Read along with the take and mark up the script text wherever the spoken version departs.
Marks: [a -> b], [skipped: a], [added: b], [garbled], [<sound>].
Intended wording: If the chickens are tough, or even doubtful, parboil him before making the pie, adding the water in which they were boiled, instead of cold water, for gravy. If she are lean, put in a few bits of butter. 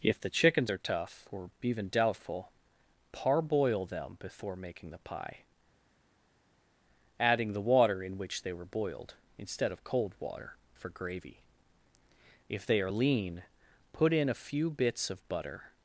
If the chickens are tough, or even doubtful, parboil [him -> them] before making the pie, adding the water in which they were boiled, instead of cold water, for gravy. If [she -> they] are lean, put in a few bits of butter.